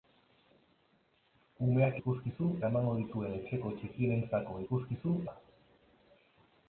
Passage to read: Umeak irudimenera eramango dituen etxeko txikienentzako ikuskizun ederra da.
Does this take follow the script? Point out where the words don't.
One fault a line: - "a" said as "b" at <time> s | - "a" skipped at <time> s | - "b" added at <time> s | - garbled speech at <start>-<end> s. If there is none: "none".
- "irudimenera" said as "ikuskizun" at 2.0 s
- "ederra" skipped at 5.2 s